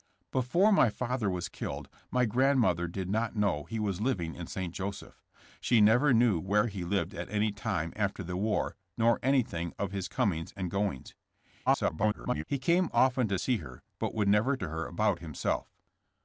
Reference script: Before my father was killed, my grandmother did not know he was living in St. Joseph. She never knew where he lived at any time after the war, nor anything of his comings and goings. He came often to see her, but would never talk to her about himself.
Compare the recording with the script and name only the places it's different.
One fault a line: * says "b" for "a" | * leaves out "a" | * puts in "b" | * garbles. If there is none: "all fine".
* garbles
* leaves out "talk"